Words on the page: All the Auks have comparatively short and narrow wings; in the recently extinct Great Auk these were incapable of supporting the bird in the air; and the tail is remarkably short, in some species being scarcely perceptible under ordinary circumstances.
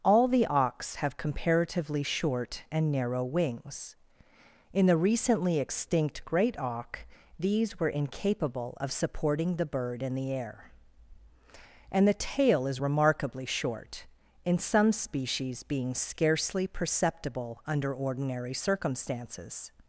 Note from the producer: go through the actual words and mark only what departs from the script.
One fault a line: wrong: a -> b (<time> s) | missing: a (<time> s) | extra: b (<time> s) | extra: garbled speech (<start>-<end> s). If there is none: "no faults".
no faults